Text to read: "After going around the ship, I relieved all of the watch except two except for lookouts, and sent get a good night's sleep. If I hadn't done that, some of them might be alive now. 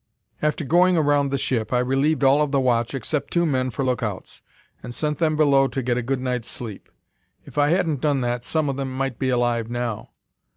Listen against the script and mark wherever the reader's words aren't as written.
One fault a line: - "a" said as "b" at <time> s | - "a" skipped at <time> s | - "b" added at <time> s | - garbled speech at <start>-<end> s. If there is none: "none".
- "except" said as "men" at 3.5 s
- "them below to" added at 5.2 s